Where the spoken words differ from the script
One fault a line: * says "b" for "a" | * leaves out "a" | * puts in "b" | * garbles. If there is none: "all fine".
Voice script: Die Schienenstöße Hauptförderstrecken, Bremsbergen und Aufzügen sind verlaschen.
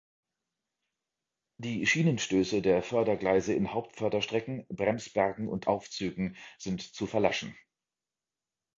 * puts in "der Fördergleise in"
* puts in "zu"